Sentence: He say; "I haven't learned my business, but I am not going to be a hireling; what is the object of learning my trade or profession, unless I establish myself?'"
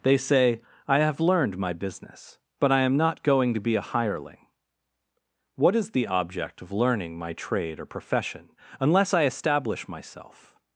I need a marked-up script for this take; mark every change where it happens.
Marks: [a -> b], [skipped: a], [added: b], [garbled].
[He -> They] say; "I [haven't -> have] learned my business, but I am not going to be a hireling; what is the object of learning my trade or profession, unless I establish myself?'"